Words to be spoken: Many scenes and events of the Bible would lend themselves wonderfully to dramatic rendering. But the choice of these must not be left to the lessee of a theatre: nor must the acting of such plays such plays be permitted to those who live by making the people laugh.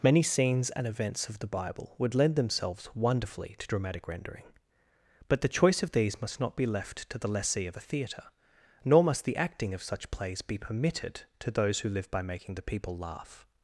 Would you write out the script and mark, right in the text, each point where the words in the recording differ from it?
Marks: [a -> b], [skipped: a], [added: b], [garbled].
Many scenes and events of the Bible would lend themselves wonderfully to dramatic rendering. But the choice of these must not be left to the lessee of a theatre: nor must the acting of such plays [skipped: such plays] be permitted to those who live by making the people laugh.